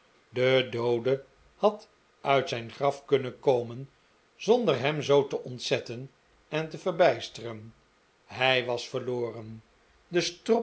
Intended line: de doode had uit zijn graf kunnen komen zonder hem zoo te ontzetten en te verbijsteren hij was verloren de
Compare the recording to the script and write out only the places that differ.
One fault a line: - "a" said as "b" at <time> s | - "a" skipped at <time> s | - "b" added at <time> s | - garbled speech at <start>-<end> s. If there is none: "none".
none